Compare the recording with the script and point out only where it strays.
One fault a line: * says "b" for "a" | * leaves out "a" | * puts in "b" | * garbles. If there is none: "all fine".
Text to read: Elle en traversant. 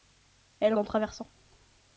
all fine